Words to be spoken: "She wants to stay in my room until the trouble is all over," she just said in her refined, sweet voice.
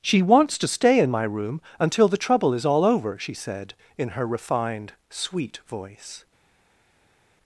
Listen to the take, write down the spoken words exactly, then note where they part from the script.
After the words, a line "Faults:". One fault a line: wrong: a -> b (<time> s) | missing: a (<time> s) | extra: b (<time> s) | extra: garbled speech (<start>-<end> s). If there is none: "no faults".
"She wants to stay in my room until the trouble is all over," she said in her refined, sweet voice.
Faults:
missing: just (3.4 s)